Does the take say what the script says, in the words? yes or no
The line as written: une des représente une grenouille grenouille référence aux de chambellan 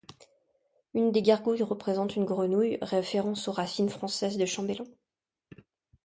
no